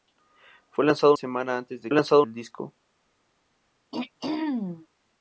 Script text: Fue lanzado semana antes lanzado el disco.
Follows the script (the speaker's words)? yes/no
yes